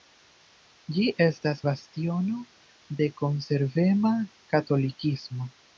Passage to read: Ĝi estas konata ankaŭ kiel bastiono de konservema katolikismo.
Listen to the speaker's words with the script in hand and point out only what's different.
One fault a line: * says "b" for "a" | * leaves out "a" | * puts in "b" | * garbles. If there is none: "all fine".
* leaves out "konata ankaŭ kiel"